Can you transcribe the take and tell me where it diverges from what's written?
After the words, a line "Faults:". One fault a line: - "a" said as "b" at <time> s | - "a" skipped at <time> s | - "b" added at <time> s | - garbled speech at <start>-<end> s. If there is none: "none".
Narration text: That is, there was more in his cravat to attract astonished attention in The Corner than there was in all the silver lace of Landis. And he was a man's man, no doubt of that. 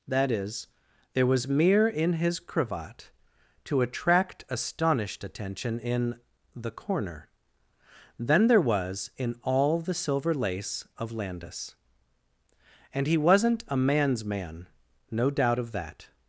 That is, there was mere in his cravat to attract astonished attention in The Corner than there was in all the silver lace of Landis. And he wasn't a man's man, no doubt of that.
Faults:
- "more" said as "mere" at 1.5 s
- "was" said as "wasn't" at 13.2 s